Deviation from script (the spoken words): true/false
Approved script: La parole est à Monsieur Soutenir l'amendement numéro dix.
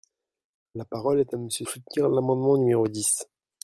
false